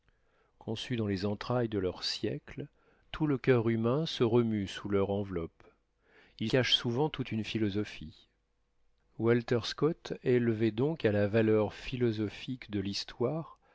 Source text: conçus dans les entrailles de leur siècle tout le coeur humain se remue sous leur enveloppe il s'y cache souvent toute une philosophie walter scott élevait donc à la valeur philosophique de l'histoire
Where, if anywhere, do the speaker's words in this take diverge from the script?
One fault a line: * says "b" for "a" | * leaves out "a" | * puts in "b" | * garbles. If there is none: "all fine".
* leaves out "s'y"